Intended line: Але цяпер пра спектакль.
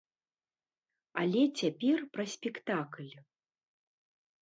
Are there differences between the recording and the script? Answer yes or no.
no